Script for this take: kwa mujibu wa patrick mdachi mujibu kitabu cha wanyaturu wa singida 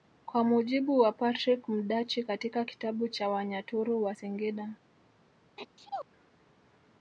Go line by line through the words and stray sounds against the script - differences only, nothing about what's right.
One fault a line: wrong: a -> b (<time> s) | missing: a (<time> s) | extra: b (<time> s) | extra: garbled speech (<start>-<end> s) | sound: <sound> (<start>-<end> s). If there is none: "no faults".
wrong: mujibu -> katika (2.2 s)
sound: sneeze (5.6-6.1 s)